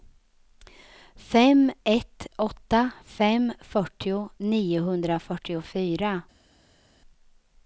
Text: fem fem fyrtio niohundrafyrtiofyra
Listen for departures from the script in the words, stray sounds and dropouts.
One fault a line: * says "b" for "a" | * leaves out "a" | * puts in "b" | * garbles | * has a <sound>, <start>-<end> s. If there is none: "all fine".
* puts in "ett åtta"